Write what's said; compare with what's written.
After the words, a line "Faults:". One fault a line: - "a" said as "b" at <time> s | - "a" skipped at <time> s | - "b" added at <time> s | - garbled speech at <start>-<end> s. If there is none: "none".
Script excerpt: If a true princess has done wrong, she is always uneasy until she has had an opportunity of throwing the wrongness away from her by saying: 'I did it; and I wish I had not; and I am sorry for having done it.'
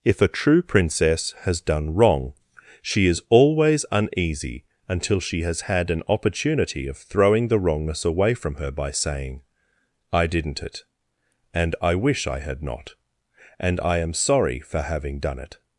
If a true princess has done wrong, she is always uneasy until she has had an opportunity of throwing the wrongness away from her by saying: 'I didn't it; and I wish I had not; and I am sorry for having done it.'
Faults:
- "did" said as "didn't" at 10.3 s